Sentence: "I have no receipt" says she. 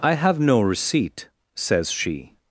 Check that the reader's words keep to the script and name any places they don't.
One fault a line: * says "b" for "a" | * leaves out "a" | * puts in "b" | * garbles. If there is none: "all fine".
all fine